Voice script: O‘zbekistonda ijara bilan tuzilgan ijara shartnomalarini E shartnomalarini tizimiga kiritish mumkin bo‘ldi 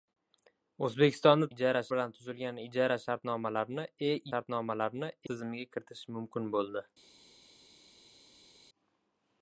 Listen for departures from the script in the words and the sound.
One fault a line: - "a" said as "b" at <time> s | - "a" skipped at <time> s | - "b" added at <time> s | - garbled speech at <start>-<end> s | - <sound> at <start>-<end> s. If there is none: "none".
none